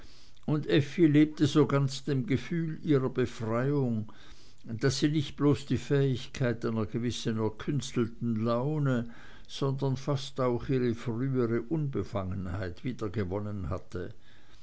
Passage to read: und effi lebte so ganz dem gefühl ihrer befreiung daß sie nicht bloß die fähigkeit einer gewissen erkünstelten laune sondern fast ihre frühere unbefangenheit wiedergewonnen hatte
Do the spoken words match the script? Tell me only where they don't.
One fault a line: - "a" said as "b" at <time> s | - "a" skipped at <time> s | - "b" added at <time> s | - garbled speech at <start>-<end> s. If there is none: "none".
- "auch" added at 10.4 s